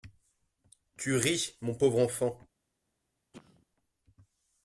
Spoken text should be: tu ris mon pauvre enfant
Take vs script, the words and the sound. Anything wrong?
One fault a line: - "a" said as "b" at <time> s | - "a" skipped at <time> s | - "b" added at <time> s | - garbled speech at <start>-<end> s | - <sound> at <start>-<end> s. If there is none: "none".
- cough at 3.3-3.7 s